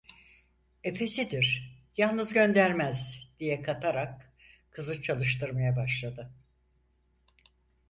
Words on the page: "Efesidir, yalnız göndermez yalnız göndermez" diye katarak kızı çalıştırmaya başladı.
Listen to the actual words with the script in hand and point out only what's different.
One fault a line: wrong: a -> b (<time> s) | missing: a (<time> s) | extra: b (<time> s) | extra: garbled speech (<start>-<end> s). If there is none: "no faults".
missing: yalnız göndermez (3.3 s)